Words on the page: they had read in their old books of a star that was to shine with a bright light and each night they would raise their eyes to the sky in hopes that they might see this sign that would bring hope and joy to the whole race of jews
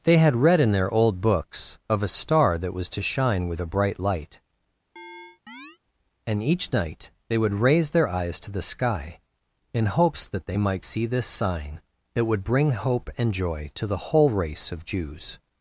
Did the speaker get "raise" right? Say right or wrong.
right